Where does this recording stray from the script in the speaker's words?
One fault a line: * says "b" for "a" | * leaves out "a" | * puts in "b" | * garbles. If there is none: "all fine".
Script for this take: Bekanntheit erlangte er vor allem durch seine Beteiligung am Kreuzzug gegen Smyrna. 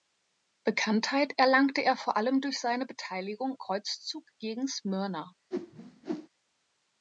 * leaves out "am"